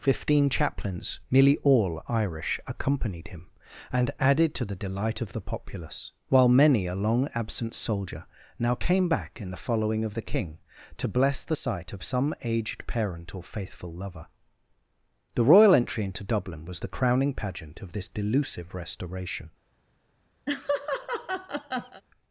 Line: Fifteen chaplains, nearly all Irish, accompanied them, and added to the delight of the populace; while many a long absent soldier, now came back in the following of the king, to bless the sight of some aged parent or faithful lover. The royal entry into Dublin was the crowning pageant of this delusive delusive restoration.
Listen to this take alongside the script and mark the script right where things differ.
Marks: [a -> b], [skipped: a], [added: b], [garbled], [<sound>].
Fifteen chaplains, nearly all Irish, accompanied [them, -> him] and added to the delight of the populace; while many a long absent soldier, now came back in the following of the king, to bless the sight of some aged parent or faithful lover. The royal entry into Dublin was the crowning pageant of this delusive [skipped: delusive] restoration. [laugh]